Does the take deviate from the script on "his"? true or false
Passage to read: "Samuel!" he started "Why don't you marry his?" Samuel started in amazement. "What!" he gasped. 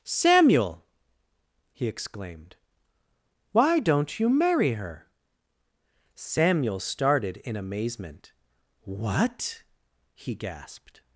true